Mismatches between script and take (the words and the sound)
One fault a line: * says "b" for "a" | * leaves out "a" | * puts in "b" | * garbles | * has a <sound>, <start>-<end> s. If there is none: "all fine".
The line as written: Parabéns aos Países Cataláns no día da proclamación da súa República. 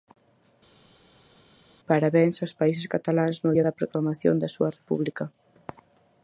all fine